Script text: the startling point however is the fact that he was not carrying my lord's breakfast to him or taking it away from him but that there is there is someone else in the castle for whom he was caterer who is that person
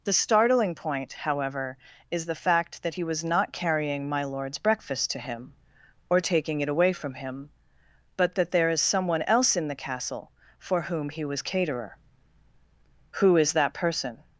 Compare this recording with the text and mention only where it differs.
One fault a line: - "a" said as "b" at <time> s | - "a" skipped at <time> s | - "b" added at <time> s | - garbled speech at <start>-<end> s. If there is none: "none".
- "there is" skipped at 8.8 s